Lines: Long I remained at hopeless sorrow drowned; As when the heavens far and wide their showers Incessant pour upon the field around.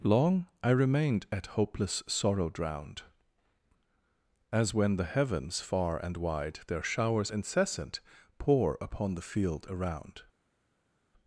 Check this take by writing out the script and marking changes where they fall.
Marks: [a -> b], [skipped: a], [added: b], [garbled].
Long I remained at hopeless sorrow drowned; As when the heavens far and wide their showers Incessant pour upon the field around.